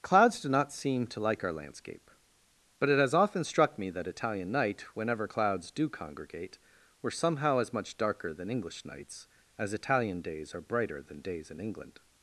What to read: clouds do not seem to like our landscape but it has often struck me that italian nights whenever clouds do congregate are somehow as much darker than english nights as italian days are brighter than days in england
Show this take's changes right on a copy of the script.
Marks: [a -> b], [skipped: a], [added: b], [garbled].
clouds do not seem to like our landscape but it has often struck me that italian [nights -> night] whenever clouds do congregate [are -> were] somehow as much darker than english nights as italian days are brighter than days in england